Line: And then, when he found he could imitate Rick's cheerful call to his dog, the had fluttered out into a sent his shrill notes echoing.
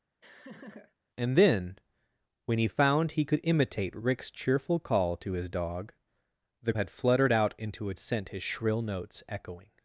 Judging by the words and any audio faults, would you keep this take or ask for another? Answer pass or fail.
fail